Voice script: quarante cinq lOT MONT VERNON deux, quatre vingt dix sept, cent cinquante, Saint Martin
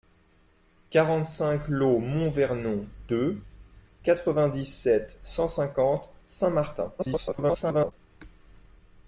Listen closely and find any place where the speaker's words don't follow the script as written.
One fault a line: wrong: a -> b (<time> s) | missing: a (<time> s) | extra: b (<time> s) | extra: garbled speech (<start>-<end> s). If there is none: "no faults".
extra: garbled speech (7.0-7.9 s)